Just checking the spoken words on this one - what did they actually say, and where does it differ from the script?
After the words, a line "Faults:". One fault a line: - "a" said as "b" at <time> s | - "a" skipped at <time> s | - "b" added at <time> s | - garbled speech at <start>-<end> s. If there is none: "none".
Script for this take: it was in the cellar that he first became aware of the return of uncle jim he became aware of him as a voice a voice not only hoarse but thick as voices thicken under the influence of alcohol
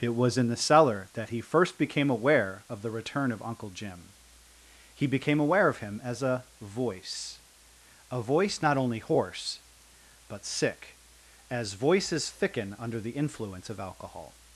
it was in the cellar that he first became aware of the return of uncle jim he became aware of him as a voice a voice not only hoarse but sick as voices thicken under the influence of alcohol
Faults:
- "thick" said as "sick" at 10.4 s